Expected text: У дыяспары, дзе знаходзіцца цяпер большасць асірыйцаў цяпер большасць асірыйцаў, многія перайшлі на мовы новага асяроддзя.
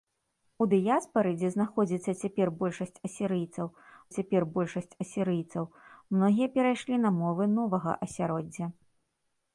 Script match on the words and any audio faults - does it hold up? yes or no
yes